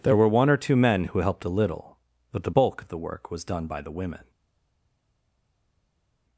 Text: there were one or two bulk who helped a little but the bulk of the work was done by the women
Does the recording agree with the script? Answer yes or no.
no